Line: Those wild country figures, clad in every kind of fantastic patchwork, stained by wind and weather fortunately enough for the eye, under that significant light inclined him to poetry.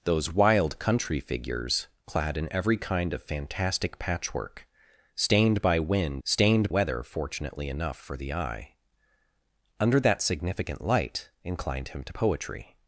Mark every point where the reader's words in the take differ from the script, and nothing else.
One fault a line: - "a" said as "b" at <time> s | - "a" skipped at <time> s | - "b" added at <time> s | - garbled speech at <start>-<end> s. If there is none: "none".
- "and" said as "stained" at 6.2 s